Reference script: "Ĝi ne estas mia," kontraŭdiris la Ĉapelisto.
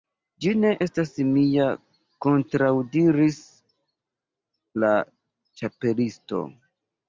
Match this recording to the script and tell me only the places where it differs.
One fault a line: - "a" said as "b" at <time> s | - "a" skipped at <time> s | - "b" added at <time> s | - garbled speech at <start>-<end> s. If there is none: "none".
none